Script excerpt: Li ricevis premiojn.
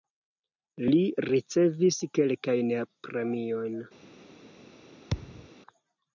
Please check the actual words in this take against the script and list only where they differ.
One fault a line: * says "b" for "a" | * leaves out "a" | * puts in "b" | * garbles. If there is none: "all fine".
* puts in "kelkajn"